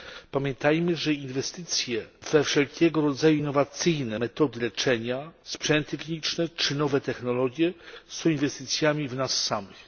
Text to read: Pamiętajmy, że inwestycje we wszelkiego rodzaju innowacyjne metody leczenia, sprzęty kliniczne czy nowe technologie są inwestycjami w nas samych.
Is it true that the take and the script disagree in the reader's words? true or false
false